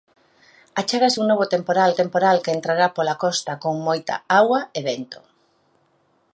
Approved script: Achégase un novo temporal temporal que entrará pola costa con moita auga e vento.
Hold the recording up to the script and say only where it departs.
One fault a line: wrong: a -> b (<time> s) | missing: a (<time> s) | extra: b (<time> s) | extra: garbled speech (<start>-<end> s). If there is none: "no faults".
no faults